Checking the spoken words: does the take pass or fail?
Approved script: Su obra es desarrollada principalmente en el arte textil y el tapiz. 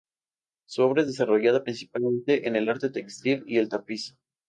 pass